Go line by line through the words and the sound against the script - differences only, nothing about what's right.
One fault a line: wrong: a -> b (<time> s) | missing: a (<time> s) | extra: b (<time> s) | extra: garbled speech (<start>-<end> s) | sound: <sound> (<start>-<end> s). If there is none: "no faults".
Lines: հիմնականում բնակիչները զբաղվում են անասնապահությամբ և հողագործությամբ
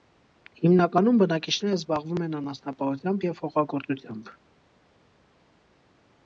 no faults